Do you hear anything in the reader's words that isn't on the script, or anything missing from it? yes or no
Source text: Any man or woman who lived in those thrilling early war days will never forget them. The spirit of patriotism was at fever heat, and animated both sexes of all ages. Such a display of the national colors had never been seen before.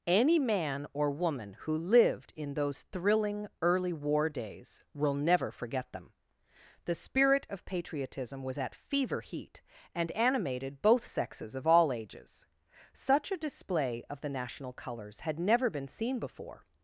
no